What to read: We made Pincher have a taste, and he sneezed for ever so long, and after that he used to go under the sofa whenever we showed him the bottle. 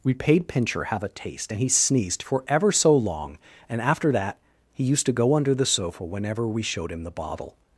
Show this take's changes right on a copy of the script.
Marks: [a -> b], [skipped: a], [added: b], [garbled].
We [made -> paid] Pincher have a taste, and he sneezed for ever so long, and after that he used to go under the sofa whenever we showed him the bottle.